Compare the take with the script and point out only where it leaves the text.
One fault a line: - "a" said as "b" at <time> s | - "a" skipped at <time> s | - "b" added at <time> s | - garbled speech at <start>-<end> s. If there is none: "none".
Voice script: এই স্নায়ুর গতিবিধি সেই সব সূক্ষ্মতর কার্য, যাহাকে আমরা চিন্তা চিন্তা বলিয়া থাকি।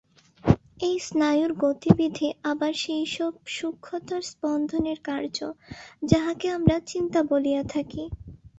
- "আবার" added at 2.4 s
- "স্পন্দনের" added at 4.3 s
- "চিন্তা" skipped at 7.2 s